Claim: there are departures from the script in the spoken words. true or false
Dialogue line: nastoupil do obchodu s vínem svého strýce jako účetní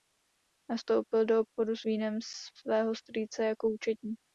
false